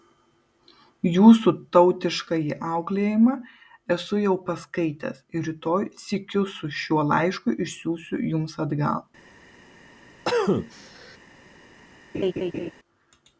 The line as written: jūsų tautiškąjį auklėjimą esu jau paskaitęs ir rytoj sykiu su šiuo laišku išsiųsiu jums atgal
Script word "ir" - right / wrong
right